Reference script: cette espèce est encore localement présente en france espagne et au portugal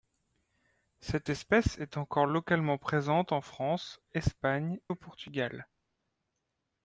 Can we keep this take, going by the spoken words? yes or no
no